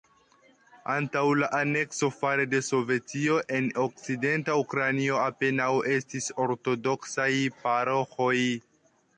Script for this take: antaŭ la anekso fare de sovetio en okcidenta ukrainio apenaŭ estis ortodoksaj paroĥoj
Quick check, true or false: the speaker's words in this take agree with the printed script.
true